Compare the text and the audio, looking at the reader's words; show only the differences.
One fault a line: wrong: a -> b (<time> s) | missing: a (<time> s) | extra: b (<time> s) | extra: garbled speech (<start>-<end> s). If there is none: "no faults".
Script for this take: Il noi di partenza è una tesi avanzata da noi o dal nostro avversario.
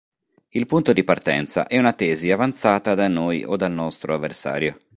wrong: noi -> punto (0.7 s)